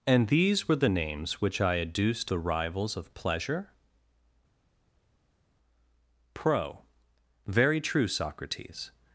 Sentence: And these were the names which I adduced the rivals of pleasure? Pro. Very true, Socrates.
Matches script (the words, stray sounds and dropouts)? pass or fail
pass